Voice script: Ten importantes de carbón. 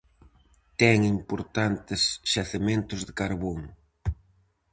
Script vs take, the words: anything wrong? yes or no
yes